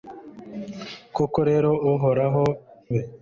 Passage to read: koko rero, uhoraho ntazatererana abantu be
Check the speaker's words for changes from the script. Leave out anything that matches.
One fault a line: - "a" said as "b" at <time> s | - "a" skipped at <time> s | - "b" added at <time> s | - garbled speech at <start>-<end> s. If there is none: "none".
- "ntazatererana abantu" skipped at 2.4 s